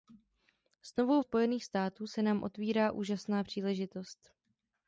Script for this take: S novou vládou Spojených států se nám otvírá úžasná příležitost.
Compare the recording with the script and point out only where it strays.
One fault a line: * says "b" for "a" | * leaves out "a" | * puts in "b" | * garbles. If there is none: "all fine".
* leaves out "vládou"